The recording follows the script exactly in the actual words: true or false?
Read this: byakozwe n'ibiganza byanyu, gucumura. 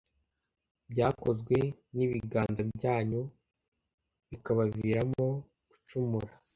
false